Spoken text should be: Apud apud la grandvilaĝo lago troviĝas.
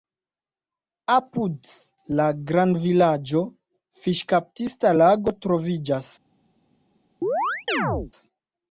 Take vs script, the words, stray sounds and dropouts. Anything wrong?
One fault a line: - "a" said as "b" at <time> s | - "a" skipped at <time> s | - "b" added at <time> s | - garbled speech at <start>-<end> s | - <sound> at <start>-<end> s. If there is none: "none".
- "apud" skipped at 1.7 s
- "fiŝkaptista" added at 4.0 s
- chirp at 7.2-8.1 s